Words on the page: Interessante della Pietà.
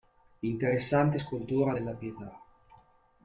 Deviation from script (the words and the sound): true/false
true